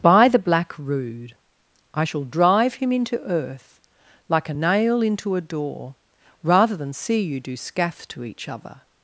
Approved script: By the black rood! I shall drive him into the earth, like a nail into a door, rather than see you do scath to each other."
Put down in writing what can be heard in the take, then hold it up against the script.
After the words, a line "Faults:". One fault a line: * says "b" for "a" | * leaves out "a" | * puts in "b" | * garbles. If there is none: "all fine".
By the black rood! I shall drive him into earth, like a nail into a door, rather than see you do scath to each other."
Faults:
* leaves out "the"